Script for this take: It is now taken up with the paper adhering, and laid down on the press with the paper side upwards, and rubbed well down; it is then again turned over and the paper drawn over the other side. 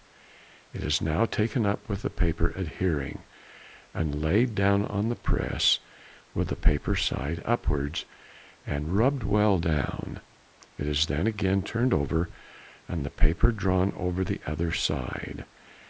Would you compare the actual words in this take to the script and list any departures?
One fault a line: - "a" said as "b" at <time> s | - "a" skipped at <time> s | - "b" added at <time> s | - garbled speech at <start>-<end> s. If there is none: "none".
none